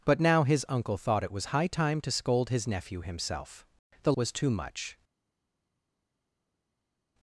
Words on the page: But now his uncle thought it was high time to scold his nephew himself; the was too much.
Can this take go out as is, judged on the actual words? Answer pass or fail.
pass